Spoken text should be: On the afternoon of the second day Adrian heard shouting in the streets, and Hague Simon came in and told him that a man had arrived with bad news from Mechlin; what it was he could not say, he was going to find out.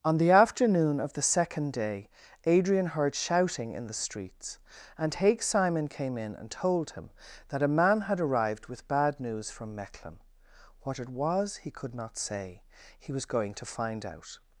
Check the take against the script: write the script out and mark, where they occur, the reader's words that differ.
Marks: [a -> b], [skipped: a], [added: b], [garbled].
On the afternoon of the second day Adrian heard shouting in the streets, and Hague Simon came in and told him that a man had arrived with bad news from Mechlin; what it was he could not say, he was going to find out.